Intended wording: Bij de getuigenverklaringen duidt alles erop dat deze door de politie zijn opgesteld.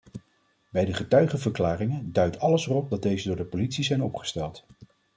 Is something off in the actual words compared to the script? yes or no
no